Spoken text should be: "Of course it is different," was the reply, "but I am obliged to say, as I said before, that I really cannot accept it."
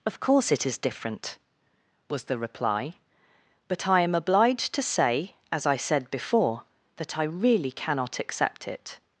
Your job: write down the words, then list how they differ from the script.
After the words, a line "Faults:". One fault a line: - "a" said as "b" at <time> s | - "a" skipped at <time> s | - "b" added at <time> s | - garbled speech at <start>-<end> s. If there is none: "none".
"Of course it is different," was the reply, "but I am obliged to say, as I said before, that I really cannot accept it."
Faults:
none